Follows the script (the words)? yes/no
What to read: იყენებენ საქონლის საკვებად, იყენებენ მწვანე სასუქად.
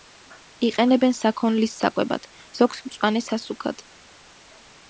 no